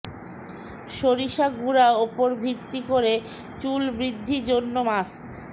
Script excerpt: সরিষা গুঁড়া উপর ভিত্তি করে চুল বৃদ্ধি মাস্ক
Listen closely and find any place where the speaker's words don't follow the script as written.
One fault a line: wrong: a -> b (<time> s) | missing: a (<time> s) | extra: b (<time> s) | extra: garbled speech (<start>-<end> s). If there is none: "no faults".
extra: জন্য (4.5 s)